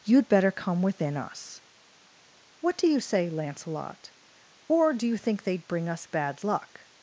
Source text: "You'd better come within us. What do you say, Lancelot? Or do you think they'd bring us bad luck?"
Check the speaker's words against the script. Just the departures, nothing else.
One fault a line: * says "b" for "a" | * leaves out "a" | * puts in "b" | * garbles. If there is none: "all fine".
all fine